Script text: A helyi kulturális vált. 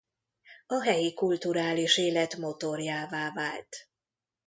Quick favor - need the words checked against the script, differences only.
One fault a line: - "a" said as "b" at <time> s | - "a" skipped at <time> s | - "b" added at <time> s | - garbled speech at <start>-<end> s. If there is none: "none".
- "élet motorjává" added at 2.0 s